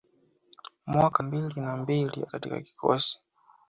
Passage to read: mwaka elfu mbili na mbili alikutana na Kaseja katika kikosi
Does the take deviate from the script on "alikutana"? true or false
true